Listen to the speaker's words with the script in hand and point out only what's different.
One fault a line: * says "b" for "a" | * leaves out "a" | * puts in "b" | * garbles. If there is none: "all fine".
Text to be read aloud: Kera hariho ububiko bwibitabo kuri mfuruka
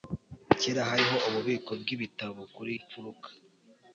all fine